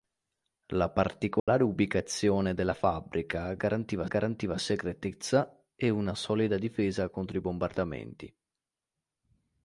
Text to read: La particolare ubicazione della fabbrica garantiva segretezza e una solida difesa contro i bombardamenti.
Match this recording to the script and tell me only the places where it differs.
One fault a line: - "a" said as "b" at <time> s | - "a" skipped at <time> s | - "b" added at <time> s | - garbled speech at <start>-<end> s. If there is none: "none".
- "garantiva" added at 4.0 s